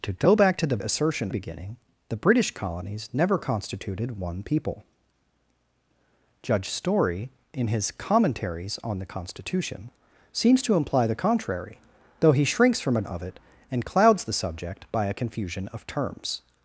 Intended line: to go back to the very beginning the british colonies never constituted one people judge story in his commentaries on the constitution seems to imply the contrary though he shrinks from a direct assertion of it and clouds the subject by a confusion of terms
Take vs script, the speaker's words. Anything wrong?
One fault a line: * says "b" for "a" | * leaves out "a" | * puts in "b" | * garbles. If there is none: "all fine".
* says "assertion" for "very"
* leaves out "direct assertion"